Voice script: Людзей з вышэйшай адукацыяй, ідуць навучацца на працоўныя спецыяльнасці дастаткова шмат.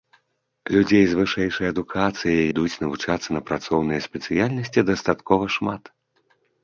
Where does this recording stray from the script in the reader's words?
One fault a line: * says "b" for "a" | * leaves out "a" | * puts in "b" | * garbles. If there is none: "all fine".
all fine